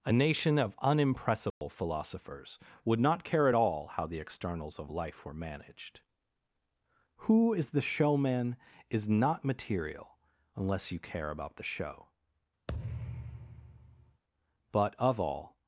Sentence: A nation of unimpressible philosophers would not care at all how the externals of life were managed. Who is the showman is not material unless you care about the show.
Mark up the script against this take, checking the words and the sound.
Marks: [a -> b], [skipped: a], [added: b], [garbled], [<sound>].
A nation of unimpressible [dropout] philosophers would not care at all how the externals of life were managed. Who is the showman is not material unless you care about the show. [thud] [added: But of all]